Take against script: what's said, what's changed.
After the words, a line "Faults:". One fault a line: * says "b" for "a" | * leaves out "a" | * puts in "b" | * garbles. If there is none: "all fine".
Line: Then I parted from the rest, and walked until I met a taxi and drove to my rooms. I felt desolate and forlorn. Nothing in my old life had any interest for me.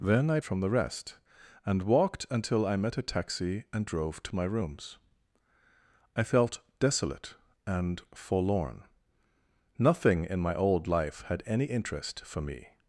Then I from the rest, and walked until I met a taxi and drove to my rooms. I felt desolate and forlorn. Nothing in my old life had any interest for me.
Faults:
* leaves out "parted"